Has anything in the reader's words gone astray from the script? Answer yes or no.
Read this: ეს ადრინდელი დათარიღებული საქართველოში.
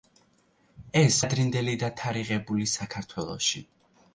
no